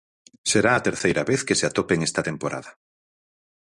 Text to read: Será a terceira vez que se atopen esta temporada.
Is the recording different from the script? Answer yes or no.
no